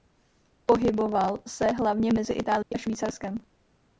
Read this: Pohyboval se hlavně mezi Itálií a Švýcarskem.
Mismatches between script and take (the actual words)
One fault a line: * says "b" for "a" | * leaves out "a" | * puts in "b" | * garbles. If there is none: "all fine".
all fine